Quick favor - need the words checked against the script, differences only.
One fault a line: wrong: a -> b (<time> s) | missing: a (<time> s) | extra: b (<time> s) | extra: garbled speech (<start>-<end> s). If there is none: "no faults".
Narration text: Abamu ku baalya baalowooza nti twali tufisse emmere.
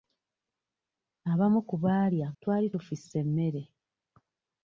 missing: baalowooza nti (2.3 s)